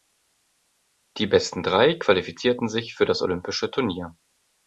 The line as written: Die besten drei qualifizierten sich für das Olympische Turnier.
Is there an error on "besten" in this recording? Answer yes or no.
no